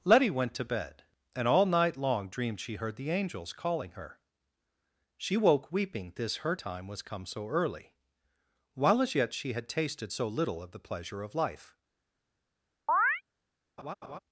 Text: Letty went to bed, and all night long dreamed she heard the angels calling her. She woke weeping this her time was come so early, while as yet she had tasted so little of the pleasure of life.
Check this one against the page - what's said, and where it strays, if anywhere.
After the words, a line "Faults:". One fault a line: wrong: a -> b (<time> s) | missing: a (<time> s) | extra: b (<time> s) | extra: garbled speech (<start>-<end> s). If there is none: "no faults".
Letty went to bed, and all night long dreamed she heard the angels calling her. She woke weeping this her time was come so early, while as yet she had tasted so little of the pleasure of life.
Faults:
no faults